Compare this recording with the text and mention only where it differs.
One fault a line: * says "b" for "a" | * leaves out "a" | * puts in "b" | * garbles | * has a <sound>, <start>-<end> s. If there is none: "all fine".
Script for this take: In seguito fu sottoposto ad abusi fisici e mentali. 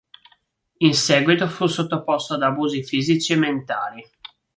all fine